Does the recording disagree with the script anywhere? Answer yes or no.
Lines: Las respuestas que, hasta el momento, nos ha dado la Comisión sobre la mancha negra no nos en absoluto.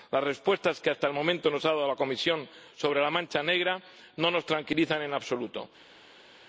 yes